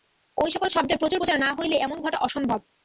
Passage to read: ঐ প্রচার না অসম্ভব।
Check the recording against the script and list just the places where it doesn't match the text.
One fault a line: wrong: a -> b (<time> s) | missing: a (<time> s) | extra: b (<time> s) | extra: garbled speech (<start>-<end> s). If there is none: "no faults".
extra: সকল শব্দের প্রচুর (0.5 s)
extra: হইলে এমন ঘটা (1.6 s)